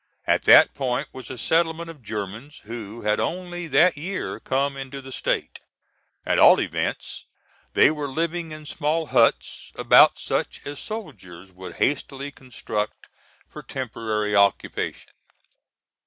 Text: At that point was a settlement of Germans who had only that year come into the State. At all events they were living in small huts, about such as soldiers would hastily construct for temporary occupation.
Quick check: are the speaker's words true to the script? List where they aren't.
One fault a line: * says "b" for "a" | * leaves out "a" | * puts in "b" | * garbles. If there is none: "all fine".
all fine